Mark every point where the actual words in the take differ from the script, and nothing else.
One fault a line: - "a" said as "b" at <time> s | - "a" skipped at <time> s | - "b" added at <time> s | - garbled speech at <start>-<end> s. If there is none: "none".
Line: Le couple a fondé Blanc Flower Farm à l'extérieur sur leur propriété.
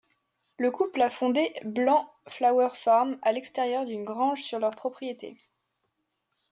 - "d'une grange" added at 3.9 s